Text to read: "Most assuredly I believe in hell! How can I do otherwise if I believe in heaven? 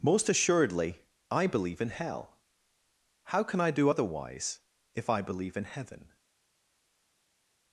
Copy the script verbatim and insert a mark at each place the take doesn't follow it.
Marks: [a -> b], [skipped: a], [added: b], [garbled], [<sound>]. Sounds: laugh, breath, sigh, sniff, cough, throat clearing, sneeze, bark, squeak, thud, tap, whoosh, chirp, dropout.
"Most assuredly I believe in hell! How can I do otherwise if I believe in heaven?